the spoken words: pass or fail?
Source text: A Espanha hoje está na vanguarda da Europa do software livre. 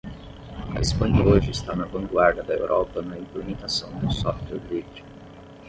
fail